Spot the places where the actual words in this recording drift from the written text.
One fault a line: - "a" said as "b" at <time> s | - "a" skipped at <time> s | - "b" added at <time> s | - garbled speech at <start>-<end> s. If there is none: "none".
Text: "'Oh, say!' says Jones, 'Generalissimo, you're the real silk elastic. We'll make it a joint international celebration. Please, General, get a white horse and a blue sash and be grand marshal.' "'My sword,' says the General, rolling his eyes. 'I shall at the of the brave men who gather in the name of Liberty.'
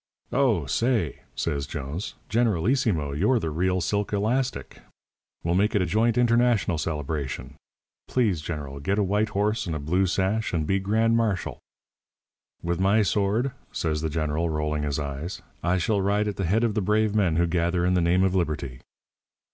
- "With" added at 12.6 s
- "ride" added at 16.0 s
- "head" added at 16.5 s